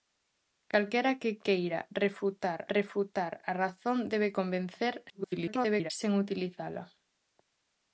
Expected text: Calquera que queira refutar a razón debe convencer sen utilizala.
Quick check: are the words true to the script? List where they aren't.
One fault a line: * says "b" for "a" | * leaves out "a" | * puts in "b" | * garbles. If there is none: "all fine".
* puts in "refutar"
* garbles